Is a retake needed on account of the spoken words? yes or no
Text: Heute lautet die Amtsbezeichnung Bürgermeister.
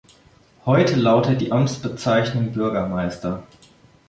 no